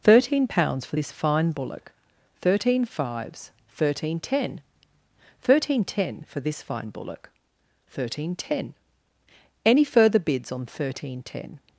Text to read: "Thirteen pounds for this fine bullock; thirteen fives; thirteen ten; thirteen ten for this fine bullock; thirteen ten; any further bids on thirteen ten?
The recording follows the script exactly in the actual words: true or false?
true